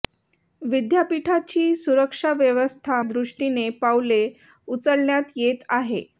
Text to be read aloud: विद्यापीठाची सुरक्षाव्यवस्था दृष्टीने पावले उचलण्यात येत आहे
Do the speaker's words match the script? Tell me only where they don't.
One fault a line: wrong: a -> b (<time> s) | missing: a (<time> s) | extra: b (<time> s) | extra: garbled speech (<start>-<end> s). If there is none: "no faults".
no faults